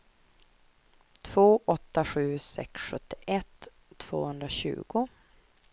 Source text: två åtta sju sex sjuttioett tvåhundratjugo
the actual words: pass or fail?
pass